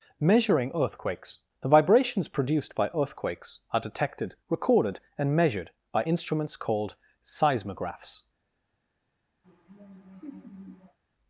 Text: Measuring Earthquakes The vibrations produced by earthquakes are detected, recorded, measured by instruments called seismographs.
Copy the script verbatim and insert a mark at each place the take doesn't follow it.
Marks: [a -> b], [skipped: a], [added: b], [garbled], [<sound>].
Measuring Earthquakes The vibrations produced by earthquakes are detected, recorded, [added: and] measured by instruments called seismographs. [laugh]